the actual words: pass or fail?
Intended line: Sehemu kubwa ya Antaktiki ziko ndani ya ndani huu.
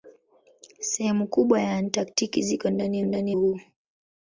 pass